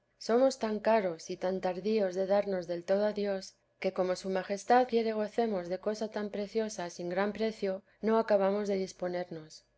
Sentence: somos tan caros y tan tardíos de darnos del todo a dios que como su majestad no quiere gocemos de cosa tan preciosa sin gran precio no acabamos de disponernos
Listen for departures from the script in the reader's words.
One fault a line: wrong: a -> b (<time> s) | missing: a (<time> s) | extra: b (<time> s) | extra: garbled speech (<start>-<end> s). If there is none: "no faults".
missing: no (4.9 s)